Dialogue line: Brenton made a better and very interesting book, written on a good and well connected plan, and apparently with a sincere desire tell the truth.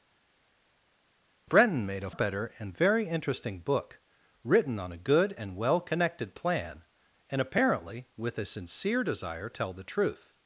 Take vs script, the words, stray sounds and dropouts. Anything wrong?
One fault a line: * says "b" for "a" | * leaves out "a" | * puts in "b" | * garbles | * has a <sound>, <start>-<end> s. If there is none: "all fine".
all fine